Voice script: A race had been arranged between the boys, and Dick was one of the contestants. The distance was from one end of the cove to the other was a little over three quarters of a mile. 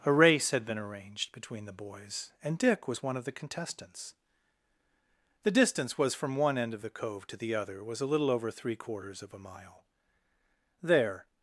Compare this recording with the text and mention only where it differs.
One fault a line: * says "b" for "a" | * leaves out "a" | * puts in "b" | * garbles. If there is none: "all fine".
* puts in "There"